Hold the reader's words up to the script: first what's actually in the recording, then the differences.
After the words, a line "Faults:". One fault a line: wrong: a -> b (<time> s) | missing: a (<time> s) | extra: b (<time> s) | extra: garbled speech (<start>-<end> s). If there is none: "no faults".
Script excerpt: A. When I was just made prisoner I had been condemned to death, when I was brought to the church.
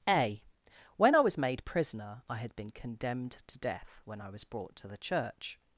A. When I was made prisoner I had been condemned to death, when I was brought to the church.
Faults:
missing: just (1.4 s)